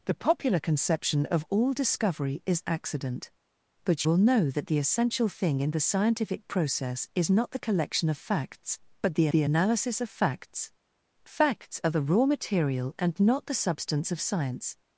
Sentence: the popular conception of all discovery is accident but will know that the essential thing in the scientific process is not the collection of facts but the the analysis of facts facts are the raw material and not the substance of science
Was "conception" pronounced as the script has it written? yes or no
yes